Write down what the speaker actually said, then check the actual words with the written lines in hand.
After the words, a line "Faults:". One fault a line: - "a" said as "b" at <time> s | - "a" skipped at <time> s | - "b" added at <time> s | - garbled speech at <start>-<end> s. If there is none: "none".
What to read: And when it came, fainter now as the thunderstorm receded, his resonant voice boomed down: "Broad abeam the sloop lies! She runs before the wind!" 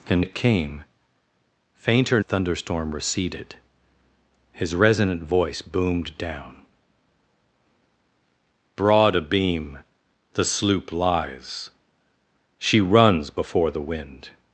And it came, fainter thunderstorm receded, his resonant voice boomed down: "Broad abeam the sloop lies! She runs before the wind!"
Faults:
- "when" skipped at 0.2 s
- "now as the" skipped at 2.2 s